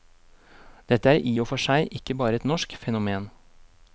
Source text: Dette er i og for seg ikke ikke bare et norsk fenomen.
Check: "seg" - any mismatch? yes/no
no